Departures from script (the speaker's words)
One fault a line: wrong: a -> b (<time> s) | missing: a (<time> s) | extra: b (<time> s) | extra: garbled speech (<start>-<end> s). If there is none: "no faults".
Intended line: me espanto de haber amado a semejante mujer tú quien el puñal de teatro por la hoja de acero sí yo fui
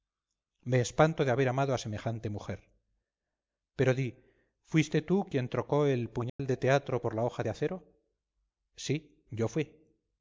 extra: pero di fuiste (3.8 s)
extra: trocó (5.5 s)